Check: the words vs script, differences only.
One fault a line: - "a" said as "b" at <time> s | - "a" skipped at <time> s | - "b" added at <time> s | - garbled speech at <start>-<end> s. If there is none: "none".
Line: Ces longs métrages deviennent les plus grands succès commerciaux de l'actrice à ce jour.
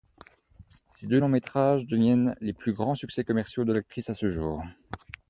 - "deux" added at 1.1 s